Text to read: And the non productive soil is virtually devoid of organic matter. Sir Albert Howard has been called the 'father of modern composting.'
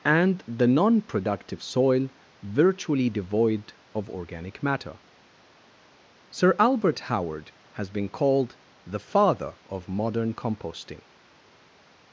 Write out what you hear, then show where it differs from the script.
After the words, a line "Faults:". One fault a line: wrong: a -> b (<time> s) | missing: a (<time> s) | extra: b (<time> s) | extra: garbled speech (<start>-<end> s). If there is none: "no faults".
And the non productive soil virtually devoid of organic matter. Sir Albert Howard has been called the 'father of modern composting.'
Faults:
missing: is (2.1 s)